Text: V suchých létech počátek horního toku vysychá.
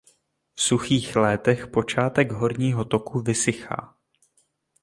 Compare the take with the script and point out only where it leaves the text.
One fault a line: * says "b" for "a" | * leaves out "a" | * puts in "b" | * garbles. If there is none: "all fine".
all fine